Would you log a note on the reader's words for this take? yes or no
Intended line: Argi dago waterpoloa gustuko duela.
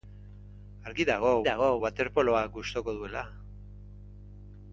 yes